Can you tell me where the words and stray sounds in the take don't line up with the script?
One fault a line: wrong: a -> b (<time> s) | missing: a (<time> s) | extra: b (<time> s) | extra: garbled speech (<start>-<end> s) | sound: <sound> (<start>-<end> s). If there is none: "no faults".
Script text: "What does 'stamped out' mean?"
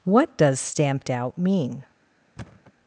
sound: thud (2.4-2.7 s)